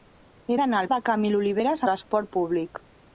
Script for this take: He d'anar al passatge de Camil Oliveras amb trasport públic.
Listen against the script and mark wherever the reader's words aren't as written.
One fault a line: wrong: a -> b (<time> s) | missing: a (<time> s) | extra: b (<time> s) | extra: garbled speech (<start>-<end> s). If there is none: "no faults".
missing: passatge (0.9 s)
missing: amb (1.9 s)